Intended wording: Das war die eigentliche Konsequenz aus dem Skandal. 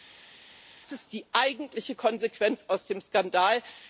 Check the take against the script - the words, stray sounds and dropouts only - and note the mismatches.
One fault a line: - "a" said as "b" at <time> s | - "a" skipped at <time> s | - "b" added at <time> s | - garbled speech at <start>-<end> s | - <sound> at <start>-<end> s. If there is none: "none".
- "war" said as "ist" at 0.9 s